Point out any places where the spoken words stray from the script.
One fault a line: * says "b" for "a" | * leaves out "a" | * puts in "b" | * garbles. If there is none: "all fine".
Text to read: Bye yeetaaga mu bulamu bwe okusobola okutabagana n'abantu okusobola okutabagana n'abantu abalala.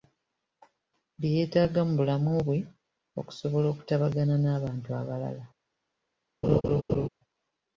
* leaves out "okusobola okutabagana n'abantu"